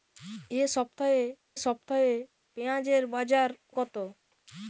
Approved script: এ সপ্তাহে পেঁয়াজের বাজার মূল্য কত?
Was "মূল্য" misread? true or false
true